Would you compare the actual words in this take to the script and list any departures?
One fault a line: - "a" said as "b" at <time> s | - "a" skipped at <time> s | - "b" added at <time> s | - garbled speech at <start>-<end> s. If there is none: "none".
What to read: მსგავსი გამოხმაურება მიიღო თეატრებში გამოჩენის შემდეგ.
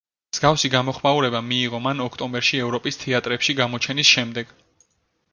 - "მან ოქტომბერში ევროპის" added at 1.9 s